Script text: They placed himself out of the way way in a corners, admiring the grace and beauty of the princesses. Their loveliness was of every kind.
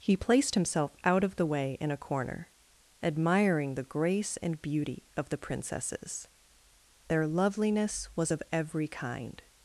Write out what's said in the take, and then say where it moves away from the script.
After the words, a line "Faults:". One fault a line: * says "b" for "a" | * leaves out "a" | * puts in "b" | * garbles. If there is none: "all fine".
He placed himself out of the way in a corner, admiring the grace and beauty of the princesses. Their loveliness was of every kind.
Faults:
* says "He" for "They"
* leaves out "way"
* says "corner" for "corners"